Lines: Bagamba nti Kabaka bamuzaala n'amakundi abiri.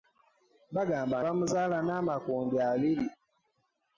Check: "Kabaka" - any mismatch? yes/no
yes